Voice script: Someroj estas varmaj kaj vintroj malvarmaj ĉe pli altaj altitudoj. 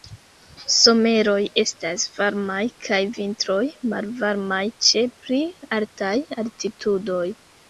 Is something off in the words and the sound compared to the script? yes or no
no